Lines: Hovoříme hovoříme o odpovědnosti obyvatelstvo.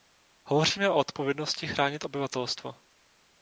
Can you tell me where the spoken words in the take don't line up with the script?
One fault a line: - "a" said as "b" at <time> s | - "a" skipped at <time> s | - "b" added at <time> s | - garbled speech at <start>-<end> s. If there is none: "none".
- "hovoříme" skipped at 0.9 s
- "chránit" added at 1.7 s